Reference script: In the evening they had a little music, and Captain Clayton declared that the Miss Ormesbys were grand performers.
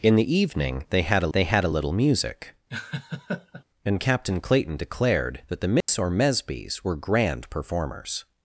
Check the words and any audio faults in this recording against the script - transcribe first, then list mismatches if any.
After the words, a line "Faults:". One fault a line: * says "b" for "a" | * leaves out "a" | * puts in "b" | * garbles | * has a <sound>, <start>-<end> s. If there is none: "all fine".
In the evening they had a they had a little music, and Captain Clayton declared that the Miss Ormesbys were grand performers.
Faults:
* puts in "they had a"
* has a laugh, 2.7-3.6 s
* has a dropout, 5.8-5.9 s